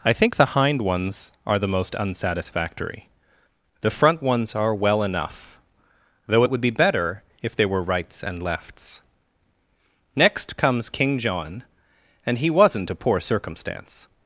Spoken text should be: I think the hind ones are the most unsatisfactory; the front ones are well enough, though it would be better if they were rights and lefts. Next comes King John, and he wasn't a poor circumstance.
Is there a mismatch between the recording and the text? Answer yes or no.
no